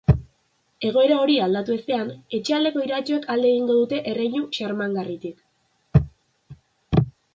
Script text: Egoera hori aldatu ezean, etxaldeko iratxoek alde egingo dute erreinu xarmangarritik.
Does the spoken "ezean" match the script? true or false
true